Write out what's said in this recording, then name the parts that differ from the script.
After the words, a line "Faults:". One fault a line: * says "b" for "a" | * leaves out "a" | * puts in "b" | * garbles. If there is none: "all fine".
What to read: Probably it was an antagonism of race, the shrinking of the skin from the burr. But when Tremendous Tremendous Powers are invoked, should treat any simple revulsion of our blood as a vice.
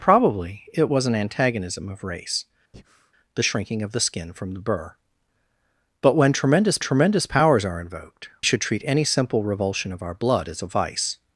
Probably it was an antagonism of race, the shrinking of the skin from the burr. But when Tremendous Tremendous Powers are invoked, should treat any simple revulsion of our blood as a vice.
Faults:
all fine